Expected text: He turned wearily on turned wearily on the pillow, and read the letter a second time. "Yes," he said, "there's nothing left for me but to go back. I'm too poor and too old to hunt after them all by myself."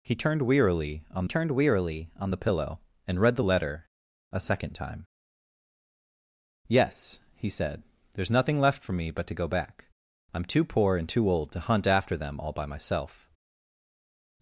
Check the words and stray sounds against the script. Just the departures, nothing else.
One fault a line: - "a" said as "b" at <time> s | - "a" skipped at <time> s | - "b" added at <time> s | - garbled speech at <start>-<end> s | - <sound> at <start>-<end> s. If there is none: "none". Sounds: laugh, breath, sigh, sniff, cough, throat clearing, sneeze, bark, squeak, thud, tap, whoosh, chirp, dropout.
none